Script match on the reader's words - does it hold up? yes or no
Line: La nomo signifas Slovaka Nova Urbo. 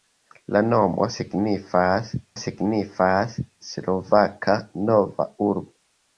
no